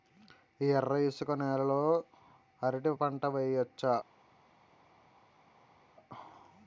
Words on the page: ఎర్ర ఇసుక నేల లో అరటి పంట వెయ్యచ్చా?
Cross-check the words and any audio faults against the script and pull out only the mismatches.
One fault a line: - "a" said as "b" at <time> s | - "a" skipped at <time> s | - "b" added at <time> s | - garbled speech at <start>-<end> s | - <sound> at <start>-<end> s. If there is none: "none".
none